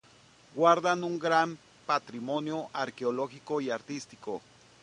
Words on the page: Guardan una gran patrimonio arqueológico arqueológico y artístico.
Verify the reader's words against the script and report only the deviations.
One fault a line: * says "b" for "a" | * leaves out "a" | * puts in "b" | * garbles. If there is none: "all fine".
* says "un" for "una"
* leaves out "arqueológico"